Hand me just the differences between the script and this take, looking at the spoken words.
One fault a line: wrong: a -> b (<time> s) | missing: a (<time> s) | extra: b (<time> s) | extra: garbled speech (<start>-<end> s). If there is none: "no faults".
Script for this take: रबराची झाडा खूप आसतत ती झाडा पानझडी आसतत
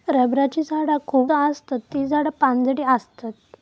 no faults